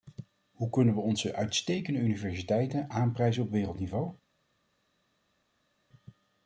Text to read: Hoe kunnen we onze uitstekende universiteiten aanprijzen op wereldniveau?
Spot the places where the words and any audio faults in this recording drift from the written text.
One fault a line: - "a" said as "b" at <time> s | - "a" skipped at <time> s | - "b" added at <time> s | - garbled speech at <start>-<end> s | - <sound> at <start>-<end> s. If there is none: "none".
none